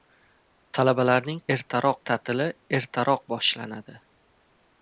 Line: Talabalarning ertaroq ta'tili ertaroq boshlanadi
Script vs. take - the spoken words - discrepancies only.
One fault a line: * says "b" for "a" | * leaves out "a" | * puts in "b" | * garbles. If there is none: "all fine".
all fine